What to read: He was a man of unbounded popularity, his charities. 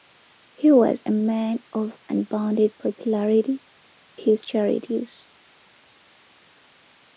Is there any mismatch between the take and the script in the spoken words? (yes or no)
no